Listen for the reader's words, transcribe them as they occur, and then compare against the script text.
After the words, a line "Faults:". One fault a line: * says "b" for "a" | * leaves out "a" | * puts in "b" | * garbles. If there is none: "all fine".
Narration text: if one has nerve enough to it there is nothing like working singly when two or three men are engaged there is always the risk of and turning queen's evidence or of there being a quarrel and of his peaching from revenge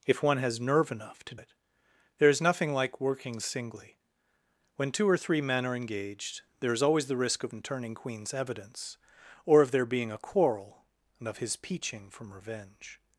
if one has nerve enough to it there is nothing like working singly when two or three men are engaged there is always the risk of and turning queen's evidence or of there being a quarrel and of his peaching from revenge
Faults:
all fine